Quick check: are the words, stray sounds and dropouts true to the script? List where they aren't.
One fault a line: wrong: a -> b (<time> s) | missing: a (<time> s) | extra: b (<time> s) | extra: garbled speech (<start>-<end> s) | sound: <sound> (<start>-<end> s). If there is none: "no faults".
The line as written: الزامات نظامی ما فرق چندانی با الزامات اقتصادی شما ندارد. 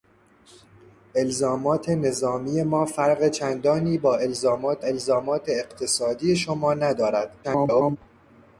extra: الزامات (4.8 s)
extra: garbled speech (7.4-8.0 s)